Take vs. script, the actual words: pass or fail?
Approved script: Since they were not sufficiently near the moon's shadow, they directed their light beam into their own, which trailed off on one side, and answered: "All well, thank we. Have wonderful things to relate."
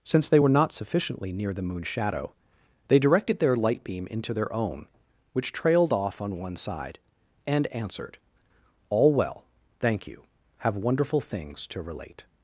fail